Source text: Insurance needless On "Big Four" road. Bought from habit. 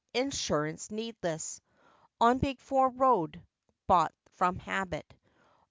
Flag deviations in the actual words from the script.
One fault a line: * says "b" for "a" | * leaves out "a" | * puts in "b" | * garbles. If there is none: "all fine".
all fine